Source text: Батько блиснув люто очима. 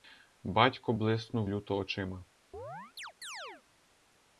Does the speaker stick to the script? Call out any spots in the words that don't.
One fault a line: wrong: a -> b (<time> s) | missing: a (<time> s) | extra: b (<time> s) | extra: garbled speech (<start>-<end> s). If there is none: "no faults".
no faults